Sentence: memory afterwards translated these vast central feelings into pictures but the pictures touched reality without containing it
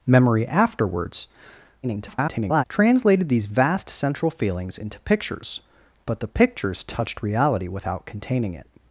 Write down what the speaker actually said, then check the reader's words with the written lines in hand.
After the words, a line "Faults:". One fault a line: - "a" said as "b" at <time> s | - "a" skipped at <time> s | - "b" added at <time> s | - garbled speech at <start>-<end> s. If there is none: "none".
memory afterwards [garbled] translated these vast central feelings into pictures but the pictures touched reality without containing it
Faults:
- garbled speech at 1.8-2.6 s